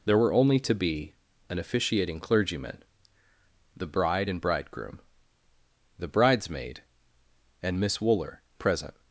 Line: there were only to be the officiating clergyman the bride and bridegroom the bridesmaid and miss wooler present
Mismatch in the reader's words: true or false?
true